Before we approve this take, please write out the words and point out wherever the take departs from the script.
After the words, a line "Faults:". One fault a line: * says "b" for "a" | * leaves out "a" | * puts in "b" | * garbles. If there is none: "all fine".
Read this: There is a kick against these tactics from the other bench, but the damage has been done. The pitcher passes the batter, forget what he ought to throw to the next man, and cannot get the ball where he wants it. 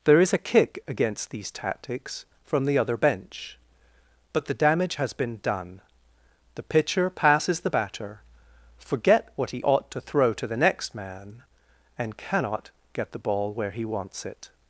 There is a kick against these tactics from the other bench, but the damage has been done. The pitcher passes the batter, forget what he ought to throw to the next man, and cannot get the ball where he wants it.
Faults:
all fine